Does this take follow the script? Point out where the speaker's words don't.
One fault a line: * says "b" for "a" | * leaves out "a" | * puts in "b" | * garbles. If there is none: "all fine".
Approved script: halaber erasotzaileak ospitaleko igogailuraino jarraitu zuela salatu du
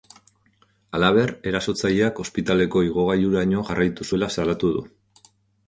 all fine